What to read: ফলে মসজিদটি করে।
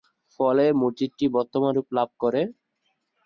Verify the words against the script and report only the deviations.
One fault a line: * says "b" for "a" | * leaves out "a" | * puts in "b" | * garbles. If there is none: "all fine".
* puts in "বর্তমান রূপ লাভ"